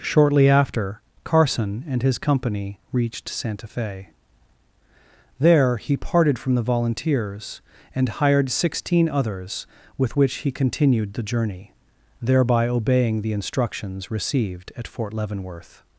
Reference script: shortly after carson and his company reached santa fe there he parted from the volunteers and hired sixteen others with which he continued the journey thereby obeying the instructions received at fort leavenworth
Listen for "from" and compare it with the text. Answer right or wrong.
right